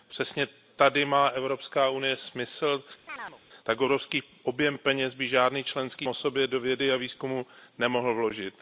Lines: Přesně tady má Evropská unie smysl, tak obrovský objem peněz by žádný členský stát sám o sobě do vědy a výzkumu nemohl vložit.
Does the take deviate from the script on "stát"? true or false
true